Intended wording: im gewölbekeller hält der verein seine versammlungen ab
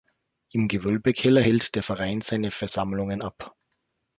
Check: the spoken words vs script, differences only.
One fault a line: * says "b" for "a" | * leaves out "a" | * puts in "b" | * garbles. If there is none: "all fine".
all fine